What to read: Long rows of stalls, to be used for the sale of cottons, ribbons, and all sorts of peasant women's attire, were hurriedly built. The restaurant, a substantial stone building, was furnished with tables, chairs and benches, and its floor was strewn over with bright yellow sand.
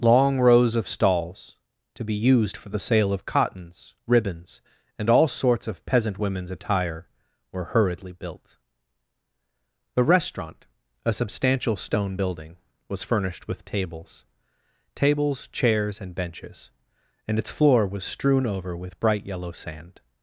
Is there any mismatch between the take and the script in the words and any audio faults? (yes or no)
yes